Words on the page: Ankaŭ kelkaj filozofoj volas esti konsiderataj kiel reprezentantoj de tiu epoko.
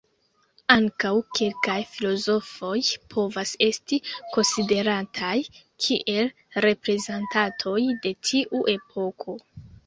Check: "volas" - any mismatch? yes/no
yes